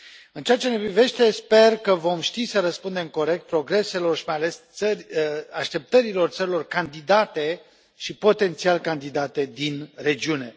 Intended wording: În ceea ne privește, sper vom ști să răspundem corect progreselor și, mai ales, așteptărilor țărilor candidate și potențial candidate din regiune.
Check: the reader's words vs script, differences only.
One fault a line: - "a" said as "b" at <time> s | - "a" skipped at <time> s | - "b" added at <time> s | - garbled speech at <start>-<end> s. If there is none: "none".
- "ce" added at 0.6 s
- "că" added at 1.8 s